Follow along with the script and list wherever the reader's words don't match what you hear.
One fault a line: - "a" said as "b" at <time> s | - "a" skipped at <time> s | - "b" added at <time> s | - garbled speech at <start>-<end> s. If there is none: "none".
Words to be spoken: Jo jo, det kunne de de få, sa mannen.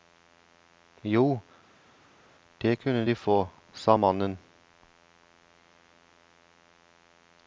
- "jo" skipped at 1.4 s
- "de" skipped at 3.1 s